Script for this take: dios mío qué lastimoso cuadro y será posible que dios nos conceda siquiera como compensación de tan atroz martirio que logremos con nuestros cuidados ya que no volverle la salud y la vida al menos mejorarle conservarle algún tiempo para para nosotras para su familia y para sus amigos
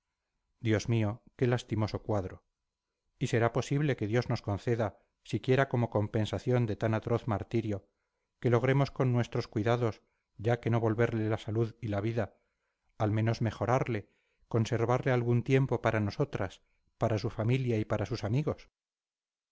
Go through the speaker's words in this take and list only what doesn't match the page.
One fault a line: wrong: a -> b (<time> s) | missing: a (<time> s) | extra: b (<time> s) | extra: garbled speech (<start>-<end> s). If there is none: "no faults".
missing: para (16.0 s)